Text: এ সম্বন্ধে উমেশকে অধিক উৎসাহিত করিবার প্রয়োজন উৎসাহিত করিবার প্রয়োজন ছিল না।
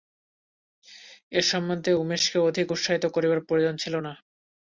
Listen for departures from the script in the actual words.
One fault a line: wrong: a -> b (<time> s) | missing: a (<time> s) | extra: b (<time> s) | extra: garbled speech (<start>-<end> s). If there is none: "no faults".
missing: উৎসাহিত করিবার প্রয়োজন (3.7 s)